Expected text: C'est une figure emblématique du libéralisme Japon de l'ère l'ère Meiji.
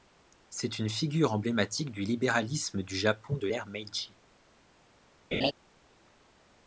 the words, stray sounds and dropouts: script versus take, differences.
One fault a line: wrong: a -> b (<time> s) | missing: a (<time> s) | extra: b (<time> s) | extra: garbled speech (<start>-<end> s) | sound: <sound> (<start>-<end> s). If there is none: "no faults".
extra: du (2.8 s)
missing: l'ère (3.6 s)
sound: laugh (5.3-5.5 s)